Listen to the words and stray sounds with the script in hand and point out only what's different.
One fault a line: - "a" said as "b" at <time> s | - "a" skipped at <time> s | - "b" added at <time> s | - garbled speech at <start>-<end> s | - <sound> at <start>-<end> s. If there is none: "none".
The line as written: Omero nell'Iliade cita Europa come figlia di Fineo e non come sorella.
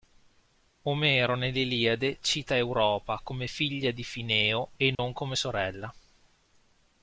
- dropout at 4.9-5.0 s